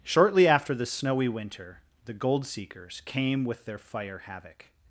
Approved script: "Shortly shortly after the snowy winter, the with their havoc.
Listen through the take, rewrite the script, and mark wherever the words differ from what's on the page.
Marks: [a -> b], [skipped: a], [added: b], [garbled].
"Shortly [skipped: shortly] after the snowy winter, the [added: gold seekers came] with their [added: fire] havoc.